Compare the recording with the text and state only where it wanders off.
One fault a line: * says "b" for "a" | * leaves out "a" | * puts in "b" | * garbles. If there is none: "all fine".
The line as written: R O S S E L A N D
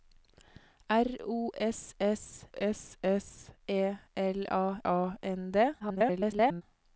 * puts in "S S"
* puts in "A"
* garbles